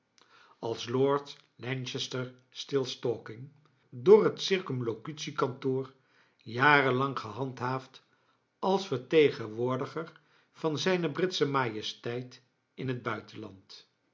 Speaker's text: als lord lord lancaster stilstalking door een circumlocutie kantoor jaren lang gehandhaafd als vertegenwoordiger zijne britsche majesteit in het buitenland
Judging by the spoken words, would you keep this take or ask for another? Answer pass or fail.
fail